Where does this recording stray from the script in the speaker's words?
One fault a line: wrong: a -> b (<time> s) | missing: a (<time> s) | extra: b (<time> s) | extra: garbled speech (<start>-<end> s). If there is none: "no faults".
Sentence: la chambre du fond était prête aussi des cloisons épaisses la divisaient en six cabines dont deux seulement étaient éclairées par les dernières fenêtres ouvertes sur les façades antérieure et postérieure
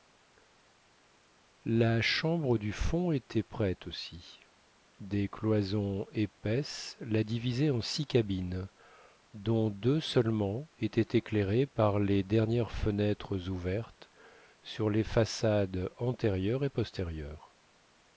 no faults